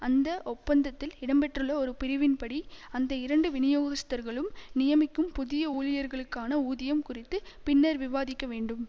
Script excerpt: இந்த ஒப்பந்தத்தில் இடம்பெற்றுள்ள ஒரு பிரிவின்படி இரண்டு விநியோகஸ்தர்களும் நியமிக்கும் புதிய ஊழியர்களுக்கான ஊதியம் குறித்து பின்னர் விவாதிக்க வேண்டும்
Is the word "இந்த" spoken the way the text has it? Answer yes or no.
no